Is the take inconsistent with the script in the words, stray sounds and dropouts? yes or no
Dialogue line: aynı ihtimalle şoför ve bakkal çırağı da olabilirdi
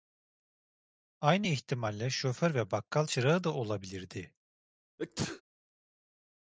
yes